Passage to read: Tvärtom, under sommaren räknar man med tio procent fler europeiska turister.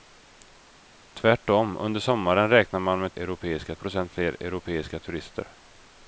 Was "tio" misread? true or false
true